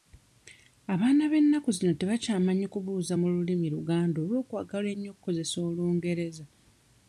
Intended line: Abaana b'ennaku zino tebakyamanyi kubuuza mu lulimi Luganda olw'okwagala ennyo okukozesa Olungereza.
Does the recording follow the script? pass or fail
pass